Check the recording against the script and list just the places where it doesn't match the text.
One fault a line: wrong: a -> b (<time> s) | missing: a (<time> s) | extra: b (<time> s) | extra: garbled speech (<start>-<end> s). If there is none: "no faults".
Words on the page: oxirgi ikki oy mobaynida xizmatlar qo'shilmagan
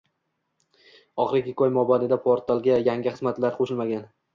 extra: portalga yangi (2.3 s)